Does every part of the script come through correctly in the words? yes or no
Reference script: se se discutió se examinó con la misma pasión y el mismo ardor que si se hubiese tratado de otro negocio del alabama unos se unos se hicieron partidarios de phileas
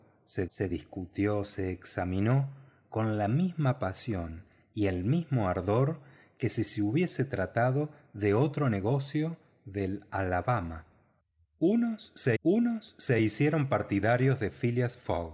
yes